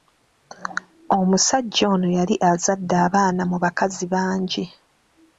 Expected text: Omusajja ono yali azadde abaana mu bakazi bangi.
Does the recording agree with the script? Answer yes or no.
yes